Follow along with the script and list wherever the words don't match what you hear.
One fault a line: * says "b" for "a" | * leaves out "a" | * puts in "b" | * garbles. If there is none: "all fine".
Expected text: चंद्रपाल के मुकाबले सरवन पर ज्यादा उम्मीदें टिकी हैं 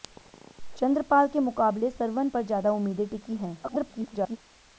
* garbles